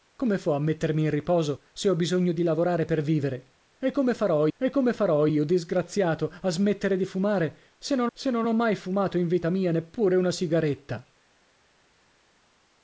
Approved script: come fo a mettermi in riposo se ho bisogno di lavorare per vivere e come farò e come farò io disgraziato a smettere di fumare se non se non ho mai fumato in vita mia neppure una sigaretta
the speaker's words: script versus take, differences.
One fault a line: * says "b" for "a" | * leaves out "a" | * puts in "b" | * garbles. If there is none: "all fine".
all fine